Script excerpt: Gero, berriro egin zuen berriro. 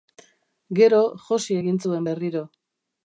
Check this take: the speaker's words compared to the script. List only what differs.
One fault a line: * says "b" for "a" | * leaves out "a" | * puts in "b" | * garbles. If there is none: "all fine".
* says "josi" for "berriro"